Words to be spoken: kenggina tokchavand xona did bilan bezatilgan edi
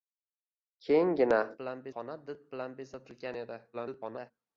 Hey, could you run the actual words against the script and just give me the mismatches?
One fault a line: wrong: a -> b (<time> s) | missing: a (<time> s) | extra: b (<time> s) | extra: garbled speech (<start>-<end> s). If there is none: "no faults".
wrong: tokchavand -> bilan (1.6 s)
extra: garbled speech (3.7-4.3 s)